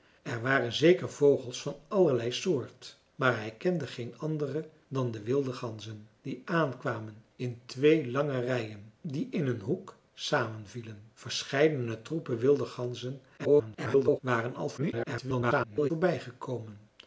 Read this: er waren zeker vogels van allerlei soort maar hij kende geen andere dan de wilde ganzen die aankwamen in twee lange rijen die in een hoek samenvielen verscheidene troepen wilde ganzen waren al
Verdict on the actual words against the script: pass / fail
fail